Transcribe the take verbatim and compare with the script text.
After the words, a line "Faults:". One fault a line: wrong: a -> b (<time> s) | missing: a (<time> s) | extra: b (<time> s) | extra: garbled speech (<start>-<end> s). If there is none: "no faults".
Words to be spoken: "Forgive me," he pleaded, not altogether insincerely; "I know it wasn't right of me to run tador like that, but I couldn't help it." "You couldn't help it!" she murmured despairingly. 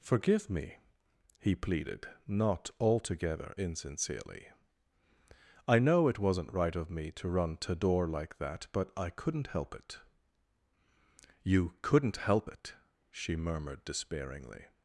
"Forgive me," he pleaded, not altogether insincerely; "I know it wasn't right of me to run tador like that, but I couldn't help it." "You couldn't help it!" she murmured despairingly.
Faults:
no faults